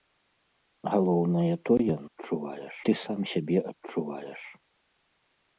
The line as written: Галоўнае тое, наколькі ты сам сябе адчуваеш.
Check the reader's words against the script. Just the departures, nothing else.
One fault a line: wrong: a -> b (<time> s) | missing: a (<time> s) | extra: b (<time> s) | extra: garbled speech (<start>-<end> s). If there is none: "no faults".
wrong: наколькі -> адчуваеш (2.1 s)